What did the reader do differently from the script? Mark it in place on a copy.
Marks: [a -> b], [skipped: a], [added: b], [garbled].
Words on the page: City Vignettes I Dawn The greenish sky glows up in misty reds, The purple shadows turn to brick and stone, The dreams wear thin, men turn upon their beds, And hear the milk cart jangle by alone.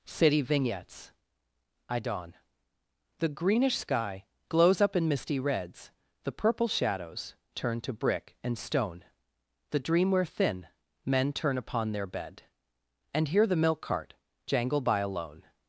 City Vignettes I Dawn The greenish sky glows up in misty reds, The purple shadows turn to brick and stone, The [dreams -> dream] wear thin, men turn upon their [beds, -> bed] And hear the milk cart jangle by alone.